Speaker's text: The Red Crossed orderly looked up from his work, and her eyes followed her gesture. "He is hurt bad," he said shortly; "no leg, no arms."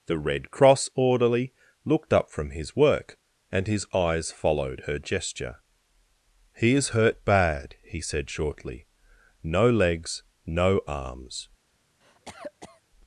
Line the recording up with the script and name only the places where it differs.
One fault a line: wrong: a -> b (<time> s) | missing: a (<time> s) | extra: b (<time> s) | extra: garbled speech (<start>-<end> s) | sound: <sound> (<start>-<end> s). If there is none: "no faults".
wrong: Crossed -> Cross (0.5 s)
wrong: her -> his (3.7 s)
wrong: leg -> legs (9.7 s)
sound: cough (12.0-12.8 s)